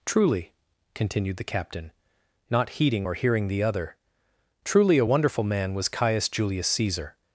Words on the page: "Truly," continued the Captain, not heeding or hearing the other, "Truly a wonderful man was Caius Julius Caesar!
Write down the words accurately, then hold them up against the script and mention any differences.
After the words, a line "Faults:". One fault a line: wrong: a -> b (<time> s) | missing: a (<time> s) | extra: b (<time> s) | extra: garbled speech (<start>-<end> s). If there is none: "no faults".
"Truly," continued the Captain, not heeding or hearing the other, "Truly a wonderful man was Caius Julius Caesar!
Faults:
no faults